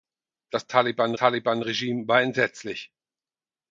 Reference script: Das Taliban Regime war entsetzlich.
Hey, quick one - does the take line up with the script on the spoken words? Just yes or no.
no